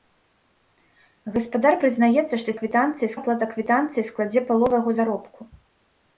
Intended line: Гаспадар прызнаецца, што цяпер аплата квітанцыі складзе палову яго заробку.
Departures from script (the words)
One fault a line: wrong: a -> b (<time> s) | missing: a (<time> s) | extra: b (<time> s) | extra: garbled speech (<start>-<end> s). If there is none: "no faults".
wrong: цяпер -> квітанцыі (2.6 s)